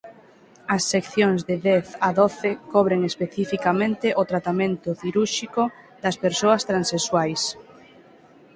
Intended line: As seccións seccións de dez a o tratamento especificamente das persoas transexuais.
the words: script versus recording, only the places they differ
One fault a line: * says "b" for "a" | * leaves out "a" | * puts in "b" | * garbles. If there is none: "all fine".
* leaves out "seccións"
* puts in "doce cobren especificamente"
* says "cirúrxico" for "especificamente"